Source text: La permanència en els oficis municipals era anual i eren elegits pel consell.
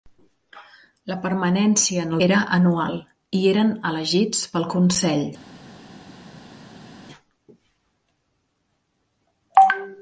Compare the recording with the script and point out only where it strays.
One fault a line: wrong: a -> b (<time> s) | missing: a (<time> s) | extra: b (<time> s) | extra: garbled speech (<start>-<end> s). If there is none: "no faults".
missing: els oficis municipals (2.1 s)